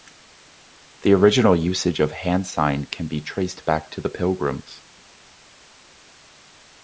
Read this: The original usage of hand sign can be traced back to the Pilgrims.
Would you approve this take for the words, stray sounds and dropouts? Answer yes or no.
yes